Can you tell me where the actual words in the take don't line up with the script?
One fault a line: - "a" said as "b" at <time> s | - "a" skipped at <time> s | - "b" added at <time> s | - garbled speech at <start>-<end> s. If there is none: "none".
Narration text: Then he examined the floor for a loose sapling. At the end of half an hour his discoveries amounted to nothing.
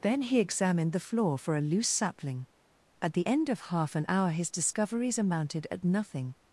- "to" said as "at" at 5.7 s